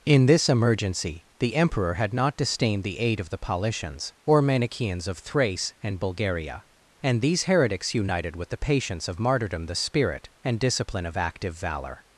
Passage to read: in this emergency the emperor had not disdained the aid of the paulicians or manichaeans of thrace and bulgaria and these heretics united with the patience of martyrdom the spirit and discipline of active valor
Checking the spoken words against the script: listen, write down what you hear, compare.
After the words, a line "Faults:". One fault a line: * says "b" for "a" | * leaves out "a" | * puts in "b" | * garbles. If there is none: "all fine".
in this emergency the emperor had not disdained the aid of the paulicians or manichaeans of thrace and bulgaria and these heretics united with the patience of martyrdom the spirit and discipline of active valor
Faults:
all fine